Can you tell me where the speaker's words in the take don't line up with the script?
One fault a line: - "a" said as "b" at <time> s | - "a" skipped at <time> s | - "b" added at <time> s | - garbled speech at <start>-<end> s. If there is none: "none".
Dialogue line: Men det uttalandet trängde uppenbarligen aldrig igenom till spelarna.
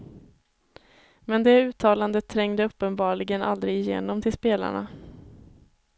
none